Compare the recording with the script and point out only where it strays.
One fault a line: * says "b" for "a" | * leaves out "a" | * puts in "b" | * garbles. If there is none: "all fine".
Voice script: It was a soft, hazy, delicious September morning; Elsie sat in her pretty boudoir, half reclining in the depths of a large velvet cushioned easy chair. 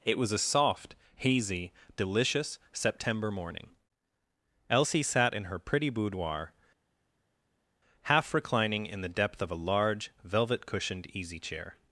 * says "depth" for "depths"